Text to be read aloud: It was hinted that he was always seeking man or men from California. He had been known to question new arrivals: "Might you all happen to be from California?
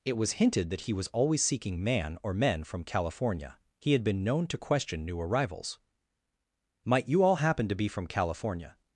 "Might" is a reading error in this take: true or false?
false